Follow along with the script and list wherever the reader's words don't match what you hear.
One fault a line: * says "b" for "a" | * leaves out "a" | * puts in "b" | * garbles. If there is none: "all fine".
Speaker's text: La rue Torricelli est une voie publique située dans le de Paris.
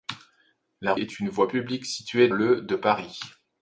* leaves out "rue Torricelli"
* leaves out "dans"